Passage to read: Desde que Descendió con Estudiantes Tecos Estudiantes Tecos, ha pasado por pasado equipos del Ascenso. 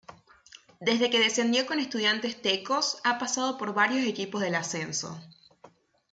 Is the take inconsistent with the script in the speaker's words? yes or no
yes